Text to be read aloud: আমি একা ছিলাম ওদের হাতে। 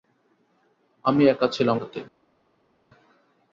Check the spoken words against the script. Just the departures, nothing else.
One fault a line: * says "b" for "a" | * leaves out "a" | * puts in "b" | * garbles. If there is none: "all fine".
* leaves out "ওদের"